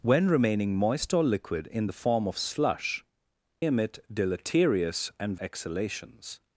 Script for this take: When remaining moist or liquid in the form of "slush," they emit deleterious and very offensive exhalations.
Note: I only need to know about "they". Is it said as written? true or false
false